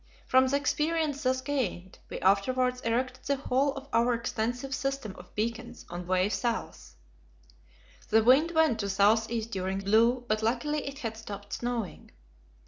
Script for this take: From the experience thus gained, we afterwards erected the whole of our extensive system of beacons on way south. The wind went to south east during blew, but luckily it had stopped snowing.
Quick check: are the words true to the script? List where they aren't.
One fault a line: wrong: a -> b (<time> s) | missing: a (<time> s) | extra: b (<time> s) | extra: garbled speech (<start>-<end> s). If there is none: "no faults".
no faults